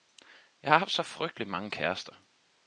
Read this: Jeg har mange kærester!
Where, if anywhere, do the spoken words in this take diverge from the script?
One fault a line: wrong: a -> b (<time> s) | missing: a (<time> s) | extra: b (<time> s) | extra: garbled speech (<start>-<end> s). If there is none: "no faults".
extra: haft så frygtelig (0.8 s)